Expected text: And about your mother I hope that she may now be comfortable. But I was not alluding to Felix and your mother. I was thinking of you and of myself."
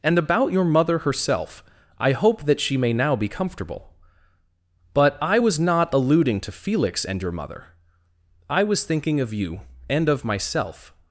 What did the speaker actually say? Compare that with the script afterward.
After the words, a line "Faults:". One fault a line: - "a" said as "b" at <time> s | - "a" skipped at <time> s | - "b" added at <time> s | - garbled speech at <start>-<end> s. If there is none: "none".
And about your mother herself, I hope that she may now be comfortable. But I was not alluding to Felix and your mother. I was thinking of you and of myself."
Faults:
- "herself" added at 1.0 s